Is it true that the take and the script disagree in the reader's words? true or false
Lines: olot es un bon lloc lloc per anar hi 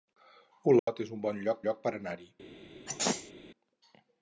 false